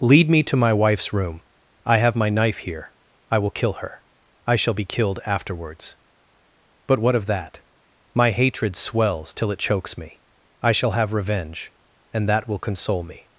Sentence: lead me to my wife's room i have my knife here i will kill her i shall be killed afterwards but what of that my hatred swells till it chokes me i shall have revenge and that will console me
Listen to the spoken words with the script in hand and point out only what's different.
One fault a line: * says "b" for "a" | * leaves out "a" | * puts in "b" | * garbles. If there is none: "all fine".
all fine